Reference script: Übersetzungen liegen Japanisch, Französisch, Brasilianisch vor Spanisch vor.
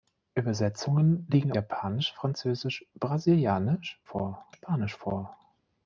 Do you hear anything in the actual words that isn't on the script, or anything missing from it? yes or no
no